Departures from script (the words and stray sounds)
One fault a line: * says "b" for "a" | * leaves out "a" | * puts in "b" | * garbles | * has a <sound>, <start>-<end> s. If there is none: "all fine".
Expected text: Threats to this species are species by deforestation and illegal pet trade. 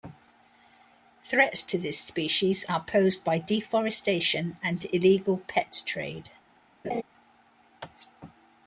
* says "posed" for "species"
* has a laugh, 6.8-7.0 s